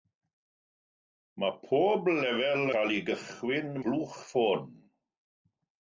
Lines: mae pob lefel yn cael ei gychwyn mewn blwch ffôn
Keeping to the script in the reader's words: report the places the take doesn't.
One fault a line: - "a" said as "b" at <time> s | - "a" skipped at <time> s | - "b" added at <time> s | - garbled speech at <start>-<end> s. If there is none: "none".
- "yn" skipped at 2.6 s
- "mewn" skipped at 3.7 s